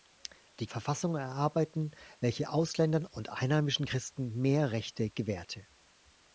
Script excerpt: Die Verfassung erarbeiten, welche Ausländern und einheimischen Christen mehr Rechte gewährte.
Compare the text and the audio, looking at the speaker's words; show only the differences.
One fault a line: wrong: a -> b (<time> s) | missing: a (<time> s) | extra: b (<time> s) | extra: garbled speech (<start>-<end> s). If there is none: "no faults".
no faults